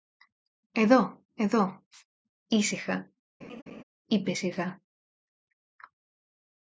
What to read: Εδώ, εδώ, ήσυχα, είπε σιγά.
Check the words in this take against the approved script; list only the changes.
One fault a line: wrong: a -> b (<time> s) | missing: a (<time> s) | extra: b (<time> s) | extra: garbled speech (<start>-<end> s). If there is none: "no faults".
no faults